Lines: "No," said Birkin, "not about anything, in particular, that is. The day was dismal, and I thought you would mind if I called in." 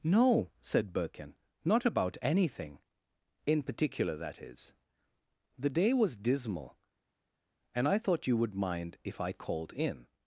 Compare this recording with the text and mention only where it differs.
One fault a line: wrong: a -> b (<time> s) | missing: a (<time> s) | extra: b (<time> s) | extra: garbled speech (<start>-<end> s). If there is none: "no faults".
no faults